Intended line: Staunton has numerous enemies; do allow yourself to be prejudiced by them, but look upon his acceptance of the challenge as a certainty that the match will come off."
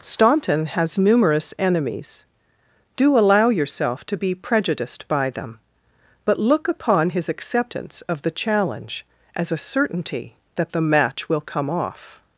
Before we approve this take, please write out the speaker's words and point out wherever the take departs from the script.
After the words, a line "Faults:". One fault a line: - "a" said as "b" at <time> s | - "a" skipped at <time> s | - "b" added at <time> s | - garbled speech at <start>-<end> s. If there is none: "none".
Staunton has numerous enemies; do allow yourself to be prejudiced by them, but look upon his acceptance of the challenge as a certainty that the match will come off."
Faults:
none